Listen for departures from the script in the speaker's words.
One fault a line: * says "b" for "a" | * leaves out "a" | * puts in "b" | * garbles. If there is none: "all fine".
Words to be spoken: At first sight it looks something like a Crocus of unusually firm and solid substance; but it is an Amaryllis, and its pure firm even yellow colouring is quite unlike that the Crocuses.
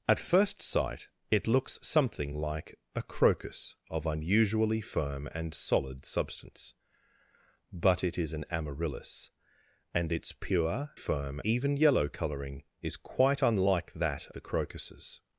all fine